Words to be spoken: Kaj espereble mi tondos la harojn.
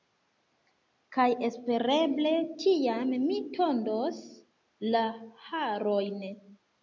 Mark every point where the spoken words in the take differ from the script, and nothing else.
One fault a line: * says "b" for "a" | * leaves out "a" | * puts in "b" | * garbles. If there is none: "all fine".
* puts in "tiam"